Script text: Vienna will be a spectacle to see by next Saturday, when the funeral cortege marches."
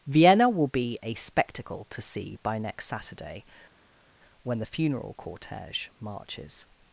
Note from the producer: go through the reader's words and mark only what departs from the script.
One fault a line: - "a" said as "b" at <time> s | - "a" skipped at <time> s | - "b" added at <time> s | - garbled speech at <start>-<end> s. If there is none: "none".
none